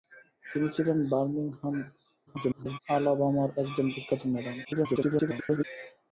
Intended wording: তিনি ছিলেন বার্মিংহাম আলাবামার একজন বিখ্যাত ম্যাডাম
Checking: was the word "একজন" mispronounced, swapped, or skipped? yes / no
no